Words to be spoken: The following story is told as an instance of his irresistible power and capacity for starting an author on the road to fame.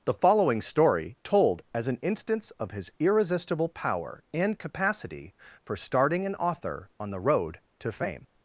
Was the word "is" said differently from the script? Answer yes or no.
yes